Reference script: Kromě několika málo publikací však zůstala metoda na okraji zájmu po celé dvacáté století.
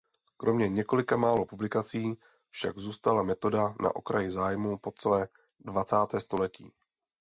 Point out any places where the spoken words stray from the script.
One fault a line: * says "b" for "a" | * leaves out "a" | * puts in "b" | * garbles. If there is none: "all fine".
all fine